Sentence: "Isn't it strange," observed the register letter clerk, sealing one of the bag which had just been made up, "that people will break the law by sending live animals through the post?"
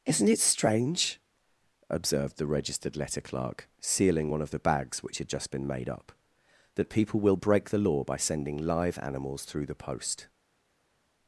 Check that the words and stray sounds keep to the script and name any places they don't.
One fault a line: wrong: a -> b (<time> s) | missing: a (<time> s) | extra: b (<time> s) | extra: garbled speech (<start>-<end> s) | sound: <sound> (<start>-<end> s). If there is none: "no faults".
wrong: register -> registered (2.5 s)
wrong: bag -> bags (4.6 s)